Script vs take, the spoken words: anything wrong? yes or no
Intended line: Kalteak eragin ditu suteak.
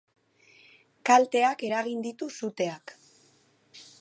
no